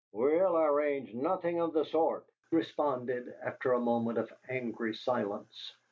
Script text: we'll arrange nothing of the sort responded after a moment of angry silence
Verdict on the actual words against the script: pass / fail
pass